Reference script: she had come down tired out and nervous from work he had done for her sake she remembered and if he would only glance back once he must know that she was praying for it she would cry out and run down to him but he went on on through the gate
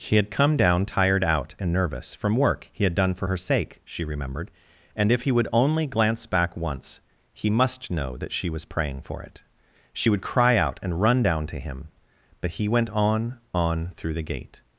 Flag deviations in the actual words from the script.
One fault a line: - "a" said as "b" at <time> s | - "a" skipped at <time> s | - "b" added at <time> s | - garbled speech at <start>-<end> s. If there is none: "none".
none